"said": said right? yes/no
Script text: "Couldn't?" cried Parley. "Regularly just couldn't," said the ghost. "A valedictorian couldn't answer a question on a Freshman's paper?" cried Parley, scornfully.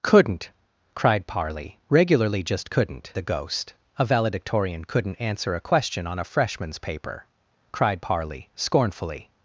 no